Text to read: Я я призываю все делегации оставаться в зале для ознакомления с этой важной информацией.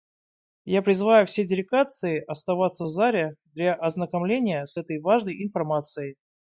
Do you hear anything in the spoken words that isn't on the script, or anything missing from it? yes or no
yes